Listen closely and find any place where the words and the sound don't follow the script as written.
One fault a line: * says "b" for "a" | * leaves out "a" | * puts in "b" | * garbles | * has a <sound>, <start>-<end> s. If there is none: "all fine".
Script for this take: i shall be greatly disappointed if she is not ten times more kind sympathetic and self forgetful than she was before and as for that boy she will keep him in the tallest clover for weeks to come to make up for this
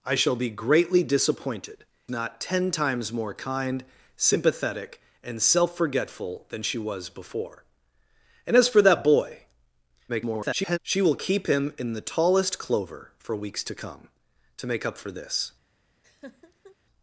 * leaves out "if she is"
* garbles
* has a laugh, 16.0-16.8 s